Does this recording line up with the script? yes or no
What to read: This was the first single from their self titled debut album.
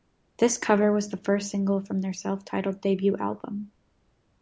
no